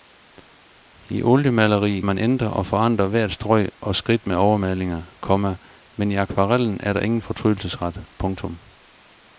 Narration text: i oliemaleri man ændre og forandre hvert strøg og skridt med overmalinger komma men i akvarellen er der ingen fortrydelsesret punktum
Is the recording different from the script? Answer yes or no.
no